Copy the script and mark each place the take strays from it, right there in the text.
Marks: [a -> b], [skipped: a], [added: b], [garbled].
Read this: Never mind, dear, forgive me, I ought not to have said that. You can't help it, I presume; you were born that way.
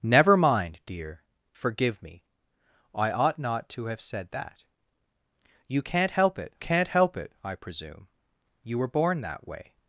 Never mind, dear, forgive me, I ought not to have said that. You can't help it, [added: can't help it] I presume; you were born that way.